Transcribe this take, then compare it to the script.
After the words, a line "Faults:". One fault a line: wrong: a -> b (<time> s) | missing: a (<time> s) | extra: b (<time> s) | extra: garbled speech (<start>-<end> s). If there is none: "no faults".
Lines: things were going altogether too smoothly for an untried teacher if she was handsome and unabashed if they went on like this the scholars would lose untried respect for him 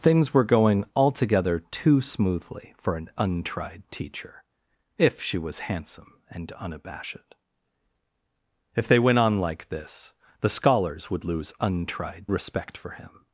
things were going altogether too smoothly for an untried teacher if she was handsome and unabashed if they went on like this the scholars would lose untried respect for him
Faults:
no faults